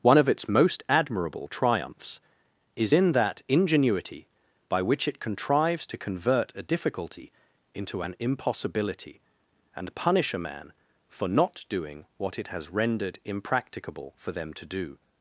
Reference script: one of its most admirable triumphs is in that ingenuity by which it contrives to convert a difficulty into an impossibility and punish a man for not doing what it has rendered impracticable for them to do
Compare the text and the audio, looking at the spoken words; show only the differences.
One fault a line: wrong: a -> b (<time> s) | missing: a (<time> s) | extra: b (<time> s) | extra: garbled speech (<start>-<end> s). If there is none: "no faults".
no faults